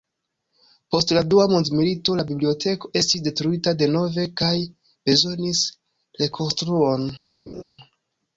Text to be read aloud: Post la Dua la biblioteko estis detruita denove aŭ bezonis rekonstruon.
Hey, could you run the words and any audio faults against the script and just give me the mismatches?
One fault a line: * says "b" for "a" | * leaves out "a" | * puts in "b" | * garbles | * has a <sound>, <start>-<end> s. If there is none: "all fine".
* puts in "mondmilito"
* says "kaj" for "aŭ"
* has a laugh, 7.5-7.6 s